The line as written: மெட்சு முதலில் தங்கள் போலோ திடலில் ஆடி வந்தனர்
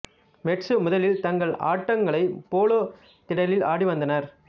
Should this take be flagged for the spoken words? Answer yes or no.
yes